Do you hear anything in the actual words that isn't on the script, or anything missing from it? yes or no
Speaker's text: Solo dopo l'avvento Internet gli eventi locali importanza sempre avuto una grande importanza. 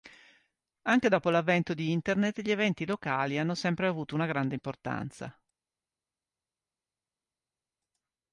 yes